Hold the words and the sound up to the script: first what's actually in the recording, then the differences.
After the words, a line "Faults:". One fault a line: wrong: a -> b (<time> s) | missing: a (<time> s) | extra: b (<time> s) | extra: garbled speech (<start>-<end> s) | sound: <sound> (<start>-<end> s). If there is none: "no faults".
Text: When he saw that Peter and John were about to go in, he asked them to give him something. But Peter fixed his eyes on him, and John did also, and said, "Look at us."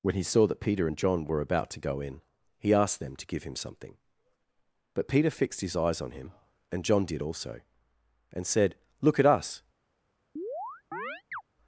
When he saw that Peter and John were about to go in, he asked them to give him something. But Peter fixed his eyes on him, and John did also, and said, "Look at us."
Faults:
sound: chirp (10.4-11.4 s)